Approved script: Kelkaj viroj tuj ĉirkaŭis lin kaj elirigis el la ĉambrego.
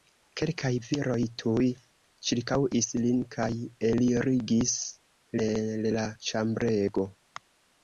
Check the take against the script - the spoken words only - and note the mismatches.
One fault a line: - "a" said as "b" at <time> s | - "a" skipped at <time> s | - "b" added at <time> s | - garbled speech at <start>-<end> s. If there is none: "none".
none